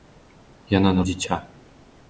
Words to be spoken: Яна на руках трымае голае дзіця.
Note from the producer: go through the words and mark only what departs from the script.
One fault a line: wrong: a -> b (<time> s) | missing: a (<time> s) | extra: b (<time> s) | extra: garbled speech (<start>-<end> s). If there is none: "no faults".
missing: руках трымае голае (1.0 s)